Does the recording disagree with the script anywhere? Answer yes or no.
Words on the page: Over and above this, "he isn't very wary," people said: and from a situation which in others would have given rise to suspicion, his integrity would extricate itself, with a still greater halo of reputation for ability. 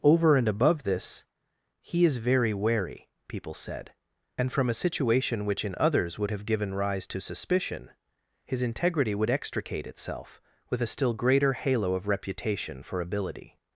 yes